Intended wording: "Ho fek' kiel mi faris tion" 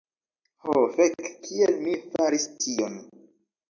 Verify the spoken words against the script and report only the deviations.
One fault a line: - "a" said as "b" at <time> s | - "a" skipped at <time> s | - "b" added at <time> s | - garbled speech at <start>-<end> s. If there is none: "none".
none